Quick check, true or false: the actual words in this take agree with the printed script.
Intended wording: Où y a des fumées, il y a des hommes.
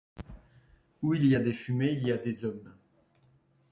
false